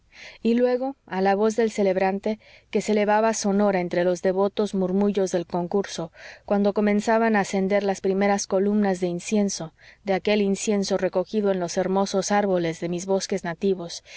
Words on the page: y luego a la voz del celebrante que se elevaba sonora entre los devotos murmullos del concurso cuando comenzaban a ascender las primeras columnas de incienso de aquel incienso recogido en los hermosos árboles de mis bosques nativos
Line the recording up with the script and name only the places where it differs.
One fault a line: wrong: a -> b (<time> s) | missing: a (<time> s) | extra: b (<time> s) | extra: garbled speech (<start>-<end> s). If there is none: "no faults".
no faults